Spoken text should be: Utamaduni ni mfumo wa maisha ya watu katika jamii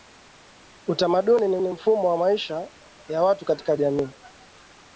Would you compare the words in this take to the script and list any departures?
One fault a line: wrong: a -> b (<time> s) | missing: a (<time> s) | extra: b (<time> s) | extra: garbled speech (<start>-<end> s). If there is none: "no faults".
extra: ni (1.6 s)